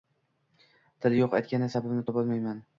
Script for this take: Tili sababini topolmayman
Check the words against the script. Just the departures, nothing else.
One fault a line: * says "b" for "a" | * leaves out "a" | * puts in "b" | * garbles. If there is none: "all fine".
* puts in "yo`q aytgani"